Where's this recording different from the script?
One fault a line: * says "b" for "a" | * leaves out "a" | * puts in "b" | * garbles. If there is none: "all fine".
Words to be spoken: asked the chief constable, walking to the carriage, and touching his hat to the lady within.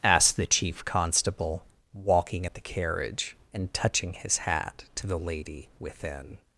* says "at" for "to"